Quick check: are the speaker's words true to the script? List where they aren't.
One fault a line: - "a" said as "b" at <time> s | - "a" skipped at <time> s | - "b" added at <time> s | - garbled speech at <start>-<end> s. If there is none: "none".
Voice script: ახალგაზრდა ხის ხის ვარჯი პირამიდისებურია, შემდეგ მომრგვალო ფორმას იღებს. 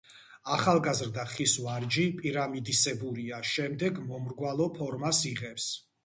- "ხის" skipped at 1.5 s